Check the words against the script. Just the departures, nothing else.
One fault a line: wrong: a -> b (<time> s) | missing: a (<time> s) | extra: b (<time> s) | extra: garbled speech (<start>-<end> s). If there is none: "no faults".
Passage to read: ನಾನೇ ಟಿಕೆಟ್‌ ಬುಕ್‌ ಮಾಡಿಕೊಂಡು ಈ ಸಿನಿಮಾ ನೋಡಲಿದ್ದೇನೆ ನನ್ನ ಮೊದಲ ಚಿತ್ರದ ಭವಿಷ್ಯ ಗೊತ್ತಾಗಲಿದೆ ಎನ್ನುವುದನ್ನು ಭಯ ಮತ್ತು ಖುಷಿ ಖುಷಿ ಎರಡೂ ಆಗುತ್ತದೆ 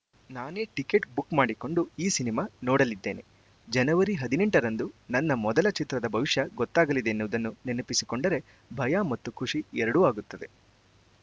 extra: ಜನವರಿ ಹದಿನೆಂಟರಂದು (3.7 s)
extra: ನೆನಪಿಸಿಕೊಂಡರೆ (7.7 s)
missing: ಖುಷಿ (9.6 s)